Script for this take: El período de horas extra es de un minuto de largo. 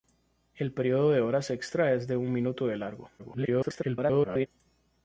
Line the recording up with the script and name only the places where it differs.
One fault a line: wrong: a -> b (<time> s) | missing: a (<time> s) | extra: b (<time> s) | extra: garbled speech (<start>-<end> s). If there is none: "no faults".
extra: garbled speech (3.2-4.5 s)